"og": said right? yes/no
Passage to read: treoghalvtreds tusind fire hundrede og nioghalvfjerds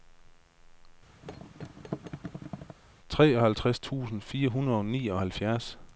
yes